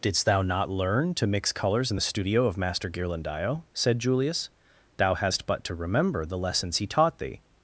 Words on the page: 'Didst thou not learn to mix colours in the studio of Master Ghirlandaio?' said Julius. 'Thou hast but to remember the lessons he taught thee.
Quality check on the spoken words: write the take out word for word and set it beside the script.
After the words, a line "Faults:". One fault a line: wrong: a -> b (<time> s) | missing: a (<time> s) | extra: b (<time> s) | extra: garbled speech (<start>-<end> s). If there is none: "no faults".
'Didst thou not learn to mix colours in the studio of Master Ghirlandaio?' said Julius. 'Thou hast but to remember the lessons he taught thee.
Faults:
no faults